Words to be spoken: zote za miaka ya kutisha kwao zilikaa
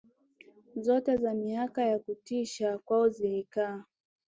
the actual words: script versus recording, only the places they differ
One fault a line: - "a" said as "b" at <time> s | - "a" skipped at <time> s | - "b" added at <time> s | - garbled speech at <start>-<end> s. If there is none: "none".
none